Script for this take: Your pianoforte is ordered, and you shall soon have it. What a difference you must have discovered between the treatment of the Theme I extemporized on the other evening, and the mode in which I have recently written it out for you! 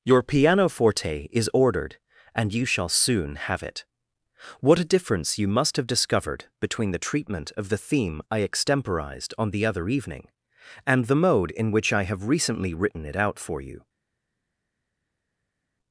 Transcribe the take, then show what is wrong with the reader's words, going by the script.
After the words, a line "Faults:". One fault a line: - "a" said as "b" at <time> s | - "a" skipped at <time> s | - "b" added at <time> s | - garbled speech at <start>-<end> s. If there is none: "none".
Your pianoforte is ordered, and you shall soon have it. What a difference you must have discovered between the treatment of the Theme I extemporized on the other evening, and the mode in which I have recently written it out for you!
Faults:
none